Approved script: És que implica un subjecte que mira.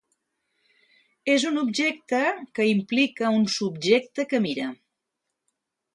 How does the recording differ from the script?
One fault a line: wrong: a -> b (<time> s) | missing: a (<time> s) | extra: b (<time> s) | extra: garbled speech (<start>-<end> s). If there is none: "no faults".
extra: un objecte (1.5 s)